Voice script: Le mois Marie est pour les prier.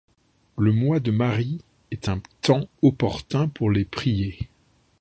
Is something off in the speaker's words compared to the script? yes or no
yes